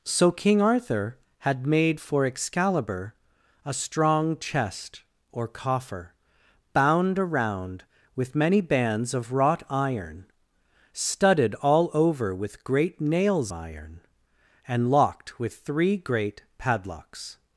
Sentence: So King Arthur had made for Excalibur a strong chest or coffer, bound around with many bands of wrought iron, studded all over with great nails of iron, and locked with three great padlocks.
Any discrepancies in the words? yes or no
yes